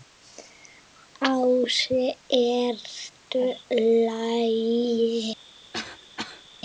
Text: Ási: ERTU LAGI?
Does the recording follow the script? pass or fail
pass